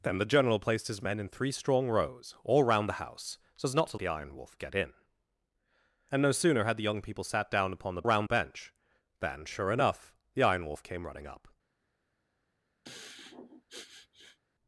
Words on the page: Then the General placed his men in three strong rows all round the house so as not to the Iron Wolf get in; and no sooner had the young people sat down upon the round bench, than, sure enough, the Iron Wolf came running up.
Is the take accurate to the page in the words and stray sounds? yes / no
no